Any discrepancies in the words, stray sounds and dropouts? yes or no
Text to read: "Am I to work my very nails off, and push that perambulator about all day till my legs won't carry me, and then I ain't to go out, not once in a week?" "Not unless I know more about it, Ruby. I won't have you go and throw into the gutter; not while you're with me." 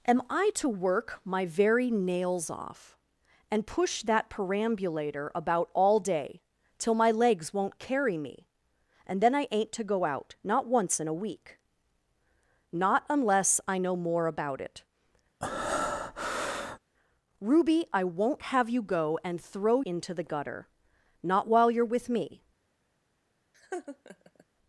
yes